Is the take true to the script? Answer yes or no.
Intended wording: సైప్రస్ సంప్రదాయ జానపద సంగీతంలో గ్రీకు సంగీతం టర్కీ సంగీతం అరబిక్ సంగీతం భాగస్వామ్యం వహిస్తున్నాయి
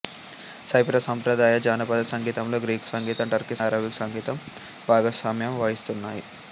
no